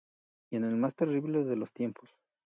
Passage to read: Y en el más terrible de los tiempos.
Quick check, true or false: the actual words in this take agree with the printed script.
true